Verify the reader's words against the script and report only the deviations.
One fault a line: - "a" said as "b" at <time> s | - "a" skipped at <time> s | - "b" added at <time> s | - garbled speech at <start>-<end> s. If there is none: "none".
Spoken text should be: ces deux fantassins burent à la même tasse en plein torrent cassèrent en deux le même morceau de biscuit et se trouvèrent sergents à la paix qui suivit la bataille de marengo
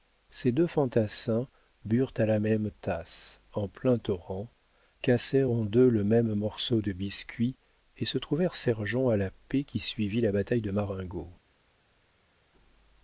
none